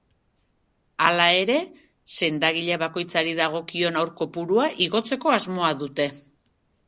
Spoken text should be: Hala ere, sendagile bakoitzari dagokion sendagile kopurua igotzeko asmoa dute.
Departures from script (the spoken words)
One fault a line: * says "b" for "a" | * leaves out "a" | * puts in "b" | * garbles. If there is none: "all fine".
* says "haur" for "sendagile"